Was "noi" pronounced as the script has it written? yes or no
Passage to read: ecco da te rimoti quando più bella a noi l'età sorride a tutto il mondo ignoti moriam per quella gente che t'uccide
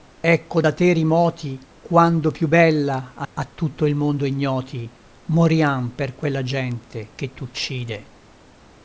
no